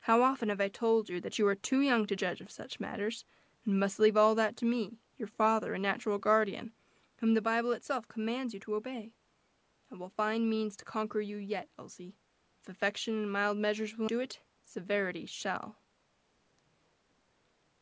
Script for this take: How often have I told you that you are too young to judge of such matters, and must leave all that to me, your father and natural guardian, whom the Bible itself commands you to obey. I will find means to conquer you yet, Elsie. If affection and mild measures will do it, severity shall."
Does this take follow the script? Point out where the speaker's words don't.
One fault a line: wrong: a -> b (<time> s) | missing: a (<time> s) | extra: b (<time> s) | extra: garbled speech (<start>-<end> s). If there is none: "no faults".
no faults